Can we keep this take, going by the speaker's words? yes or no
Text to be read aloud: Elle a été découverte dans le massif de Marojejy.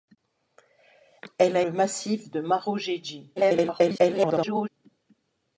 no